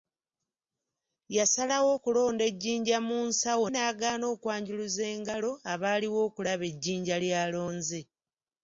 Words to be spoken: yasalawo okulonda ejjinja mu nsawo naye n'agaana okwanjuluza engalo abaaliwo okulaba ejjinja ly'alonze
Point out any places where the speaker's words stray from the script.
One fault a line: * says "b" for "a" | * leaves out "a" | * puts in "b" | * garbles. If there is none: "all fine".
* leaves out "naye"